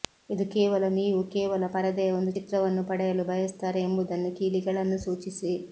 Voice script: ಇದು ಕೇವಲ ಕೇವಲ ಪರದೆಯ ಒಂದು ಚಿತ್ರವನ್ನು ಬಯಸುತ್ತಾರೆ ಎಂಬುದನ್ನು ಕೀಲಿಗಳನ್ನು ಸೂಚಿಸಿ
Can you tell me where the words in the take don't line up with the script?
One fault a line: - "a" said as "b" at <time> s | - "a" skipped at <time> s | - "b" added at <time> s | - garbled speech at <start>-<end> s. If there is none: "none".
- "ನೀವು" added at 0.9 s
- "ಪಡೆಯಲು" added at 2.9 s